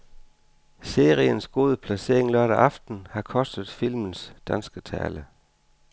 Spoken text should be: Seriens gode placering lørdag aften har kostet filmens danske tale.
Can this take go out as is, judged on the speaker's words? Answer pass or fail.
pass